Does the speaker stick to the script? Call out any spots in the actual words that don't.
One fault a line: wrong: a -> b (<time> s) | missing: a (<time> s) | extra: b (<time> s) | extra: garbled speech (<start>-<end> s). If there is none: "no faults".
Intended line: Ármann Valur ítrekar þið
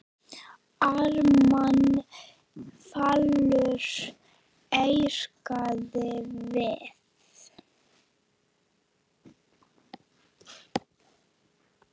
wrong: þið -> við (6.0 s)